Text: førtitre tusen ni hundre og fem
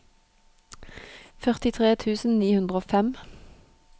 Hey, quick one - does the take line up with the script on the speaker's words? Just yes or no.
yes